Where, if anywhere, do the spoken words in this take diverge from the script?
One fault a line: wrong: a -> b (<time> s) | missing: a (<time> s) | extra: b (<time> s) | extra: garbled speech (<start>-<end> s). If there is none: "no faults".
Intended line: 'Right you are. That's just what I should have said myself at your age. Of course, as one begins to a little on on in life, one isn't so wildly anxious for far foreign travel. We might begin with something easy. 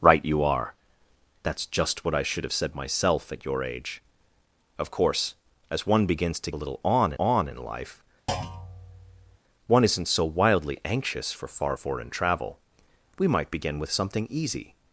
no faults